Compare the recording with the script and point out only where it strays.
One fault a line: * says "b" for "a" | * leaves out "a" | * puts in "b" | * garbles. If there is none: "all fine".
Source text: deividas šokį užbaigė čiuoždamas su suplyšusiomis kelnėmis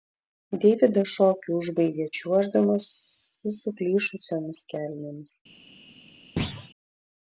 all fine